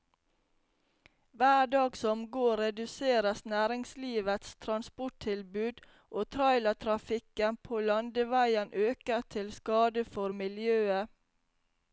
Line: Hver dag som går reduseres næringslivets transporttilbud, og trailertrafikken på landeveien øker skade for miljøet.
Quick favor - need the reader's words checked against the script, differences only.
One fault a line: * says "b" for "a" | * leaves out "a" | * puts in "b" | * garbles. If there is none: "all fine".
* puts in "til"